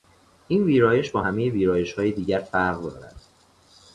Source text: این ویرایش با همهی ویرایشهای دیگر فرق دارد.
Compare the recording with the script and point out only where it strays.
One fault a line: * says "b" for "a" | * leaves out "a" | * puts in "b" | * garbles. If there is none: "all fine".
all fine